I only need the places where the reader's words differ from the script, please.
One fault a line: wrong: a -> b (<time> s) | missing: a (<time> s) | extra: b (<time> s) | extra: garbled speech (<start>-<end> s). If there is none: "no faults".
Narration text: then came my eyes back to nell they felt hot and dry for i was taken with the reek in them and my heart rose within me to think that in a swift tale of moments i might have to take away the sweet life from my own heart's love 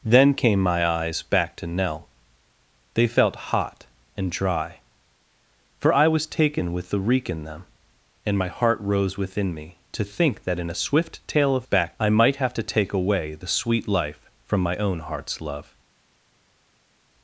wrong: moments -> back (11.6 s)